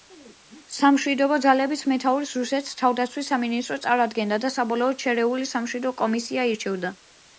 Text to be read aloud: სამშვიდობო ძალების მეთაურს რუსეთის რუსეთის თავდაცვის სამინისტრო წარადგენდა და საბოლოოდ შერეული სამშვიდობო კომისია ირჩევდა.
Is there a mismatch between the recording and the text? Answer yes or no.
yes